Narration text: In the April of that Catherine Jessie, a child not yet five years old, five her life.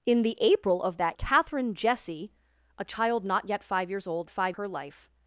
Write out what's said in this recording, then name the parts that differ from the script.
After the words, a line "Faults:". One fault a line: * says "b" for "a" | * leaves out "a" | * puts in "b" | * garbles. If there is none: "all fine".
In the April of that Catherine Jessie, a child not yet five years old, five her life.
Faults:
all fine